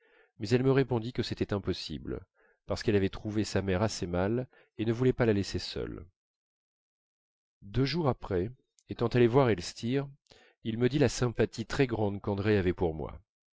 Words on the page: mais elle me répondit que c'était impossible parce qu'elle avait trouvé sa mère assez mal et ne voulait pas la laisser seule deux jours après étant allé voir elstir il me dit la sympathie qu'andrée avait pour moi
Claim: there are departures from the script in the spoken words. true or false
true